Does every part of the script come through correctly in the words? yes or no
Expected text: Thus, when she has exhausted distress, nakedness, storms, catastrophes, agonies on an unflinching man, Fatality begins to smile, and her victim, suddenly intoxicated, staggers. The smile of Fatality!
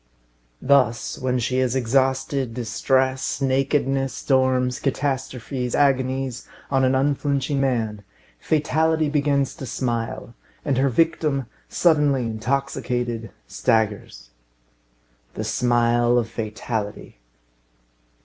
yes